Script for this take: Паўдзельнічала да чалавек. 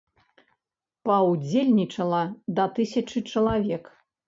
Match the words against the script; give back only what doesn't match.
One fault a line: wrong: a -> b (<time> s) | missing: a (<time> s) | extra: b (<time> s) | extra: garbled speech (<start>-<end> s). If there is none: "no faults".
extra: тысячы (2.8 s)